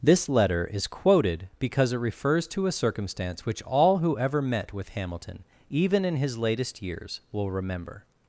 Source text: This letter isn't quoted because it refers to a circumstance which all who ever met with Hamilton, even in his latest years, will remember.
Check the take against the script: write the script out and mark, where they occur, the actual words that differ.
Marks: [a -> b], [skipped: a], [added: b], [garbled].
This letter [isn't -> is] quoted because it refers to a circumstance which all who ever met with Hamilton, even in his latest years, will remember.